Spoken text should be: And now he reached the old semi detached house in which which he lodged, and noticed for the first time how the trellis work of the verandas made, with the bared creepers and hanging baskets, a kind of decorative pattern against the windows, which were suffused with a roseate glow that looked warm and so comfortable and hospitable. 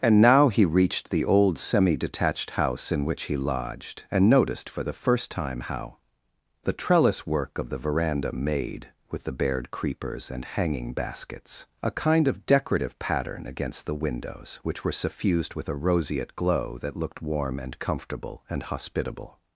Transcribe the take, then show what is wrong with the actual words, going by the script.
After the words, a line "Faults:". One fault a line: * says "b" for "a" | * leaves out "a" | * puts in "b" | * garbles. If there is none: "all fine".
And now he reached the old semi detached house in which he lodged, and noticed for the first time how the trellis work of the veranda made, with the bared creepers and hanging baskets, a kind of decorative pattern against the windows, which were suffused with a roseate glow that looked warm and comfortable and hospitable.
Faults:
* leaves out "which"
* says "veranda" for "verandas"
* leaves out "so"